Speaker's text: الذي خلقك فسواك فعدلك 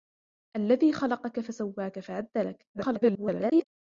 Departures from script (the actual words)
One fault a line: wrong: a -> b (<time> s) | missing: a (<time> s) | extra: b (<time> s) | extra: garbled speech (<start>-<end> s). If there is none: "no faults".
extra: garbled speech (2.7-3.6 s)